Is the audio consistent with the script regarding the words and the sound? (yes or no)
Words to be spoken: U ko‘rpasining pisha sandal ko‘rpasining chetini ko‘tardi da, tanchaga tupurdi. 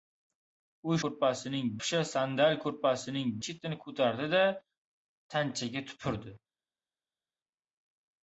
yes